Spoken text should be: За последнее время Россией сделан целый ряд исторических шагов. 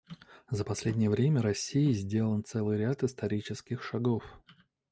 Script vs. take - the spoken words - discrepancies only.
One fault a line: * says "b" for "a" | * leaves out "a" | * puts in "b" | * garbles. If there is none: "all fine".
all fine